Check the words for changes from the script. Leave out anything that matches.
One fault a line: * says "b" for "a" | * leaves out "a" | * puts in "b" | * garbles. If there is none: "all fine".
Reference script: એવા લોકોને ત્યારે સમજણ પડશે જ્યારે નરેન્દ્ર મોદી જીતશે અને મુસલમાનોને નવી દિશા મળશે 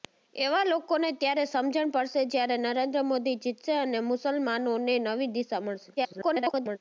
* garbles